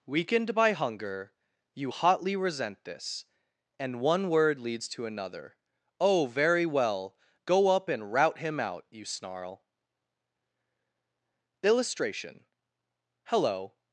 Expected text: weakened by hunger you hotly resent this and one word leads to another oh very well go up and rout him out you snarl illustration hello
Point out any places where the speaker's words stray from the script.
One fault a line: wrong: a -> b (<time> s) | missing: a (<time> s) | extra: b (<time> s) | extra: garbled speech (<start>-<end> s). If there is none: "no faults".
no faults